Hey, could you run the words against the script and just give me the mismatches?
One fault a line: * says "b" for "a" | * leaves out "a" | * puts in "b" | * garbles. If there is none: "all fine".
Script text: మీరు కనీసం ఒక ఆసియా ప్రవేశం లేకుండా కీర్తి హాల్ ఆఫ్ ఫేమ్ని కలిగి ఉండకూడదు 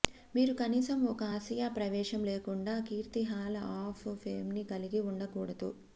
all fine